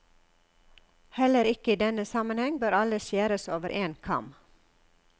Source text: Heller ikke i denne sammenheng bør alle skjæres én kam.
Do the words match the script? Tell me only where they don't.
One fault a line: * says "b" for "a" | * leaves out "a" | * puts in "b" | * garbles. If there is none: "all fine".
* puts in "over"